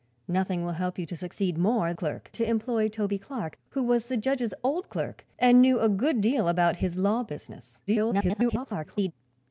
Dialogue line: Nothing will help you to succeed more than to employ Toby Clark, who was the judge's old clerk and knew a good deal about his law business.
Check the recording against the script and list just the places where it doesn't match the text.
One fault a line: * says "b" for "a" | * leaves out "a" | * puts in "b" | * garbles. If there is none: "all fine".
* says "clerk" for "than"
* garbles